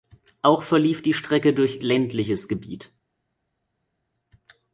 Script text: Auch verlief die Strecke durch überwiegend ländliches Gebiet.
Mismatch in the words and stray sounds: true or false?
true